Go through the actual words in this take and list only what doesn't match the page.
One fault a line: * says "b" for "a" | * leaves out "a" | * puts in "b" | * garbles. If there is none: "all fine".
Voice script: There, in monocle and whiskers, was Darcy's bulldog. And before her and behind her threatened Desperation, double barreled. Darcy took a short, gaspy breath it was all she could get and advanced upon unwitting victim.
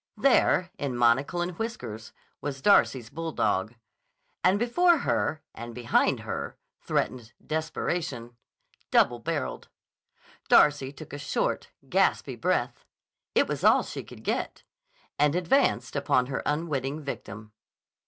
* puts in "her"